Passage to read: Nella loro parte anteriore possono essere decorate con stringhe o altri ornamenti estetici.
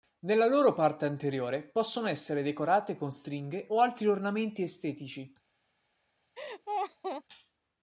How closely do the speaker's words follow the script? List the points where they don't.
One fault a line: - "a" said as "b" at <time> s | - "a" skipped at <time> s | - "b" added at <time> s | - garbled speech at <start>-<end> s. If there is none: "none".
none